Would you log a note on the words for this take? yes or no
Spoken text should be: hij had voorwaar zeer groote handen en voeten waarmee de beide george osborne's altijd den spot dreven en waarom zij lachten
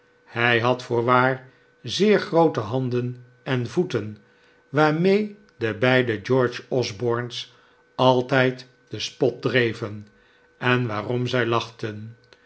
no